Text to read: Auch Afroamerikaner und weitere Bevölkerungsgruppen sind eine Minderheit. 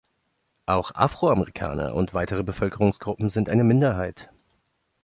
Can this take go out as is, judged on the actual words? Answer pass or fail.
pass